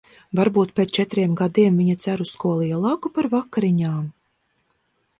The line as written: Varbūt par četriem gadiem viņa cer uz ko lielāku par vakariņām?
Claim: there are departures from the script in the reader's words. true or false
true